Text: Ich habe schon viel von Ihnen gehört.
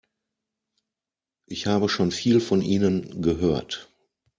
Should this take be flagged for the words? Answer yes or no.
no